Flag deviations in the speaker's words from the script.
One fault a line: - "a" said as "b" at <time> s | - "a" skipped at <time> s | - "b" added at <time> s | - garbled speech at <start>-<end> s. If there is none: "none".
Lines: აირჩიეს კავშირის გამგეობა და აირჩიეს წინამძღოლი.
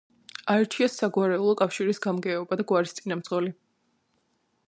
- "საგვარეულო" added at 1.0 s
- "აირჩიეს" said as "გვარის" at 2.7 s